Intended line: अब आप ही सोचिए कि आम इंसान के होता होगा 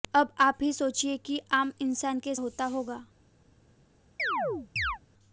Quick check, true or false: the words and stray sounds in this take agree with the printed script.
false